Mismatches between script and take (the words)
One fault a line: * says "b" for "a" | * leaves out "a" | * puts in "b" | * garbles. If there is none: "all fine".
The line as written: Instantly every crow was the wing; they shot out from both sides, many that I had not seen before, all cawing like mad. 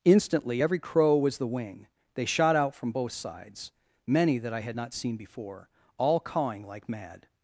all fine